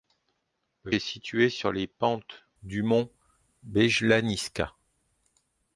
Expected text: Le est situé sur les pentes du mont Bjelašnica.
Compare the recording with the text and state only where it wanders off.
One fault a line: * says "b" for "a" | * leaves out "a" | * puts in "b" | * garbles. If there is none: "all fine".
all fine